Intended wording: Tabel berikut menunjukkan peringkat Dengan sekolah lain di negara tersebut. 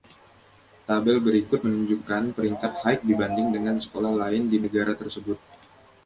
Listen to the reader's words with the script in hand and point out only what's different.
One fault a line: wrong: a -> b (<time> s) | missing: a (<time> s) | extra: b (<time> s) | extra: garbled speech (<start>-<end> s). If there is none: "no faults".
extra: High dibanding (2.9 s)